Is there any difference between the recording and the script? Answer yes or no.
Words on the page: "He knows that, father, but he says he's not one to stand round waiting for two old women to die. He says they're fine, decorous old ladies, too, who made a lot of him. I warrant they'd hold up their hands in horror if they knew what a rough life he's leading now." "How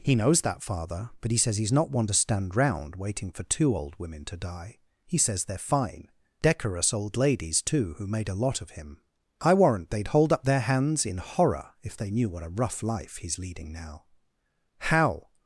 no